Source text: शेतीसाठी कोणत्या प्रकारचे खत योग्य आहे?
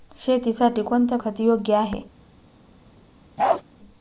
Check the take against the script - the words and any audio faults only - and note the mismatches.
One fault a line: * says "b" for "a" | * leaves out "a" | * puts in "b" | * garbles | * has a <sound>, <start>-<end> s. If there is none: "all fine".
* leaves out "प्रकारचे"
* has a bark, 3.4-3.6 s